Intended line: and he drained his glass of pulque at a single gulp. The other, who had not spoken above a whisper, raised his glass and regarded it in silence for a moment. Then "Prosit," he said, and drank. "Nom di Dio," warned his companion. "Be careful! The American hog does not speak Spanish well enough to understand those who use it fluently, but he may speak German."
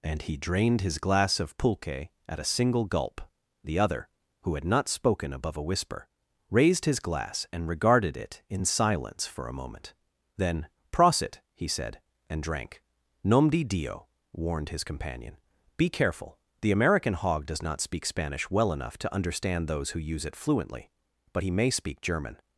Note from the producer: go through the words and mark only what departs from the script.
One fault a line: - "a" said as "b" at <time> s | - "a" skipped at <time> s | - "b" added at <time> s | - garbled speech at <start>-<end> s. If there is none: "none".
none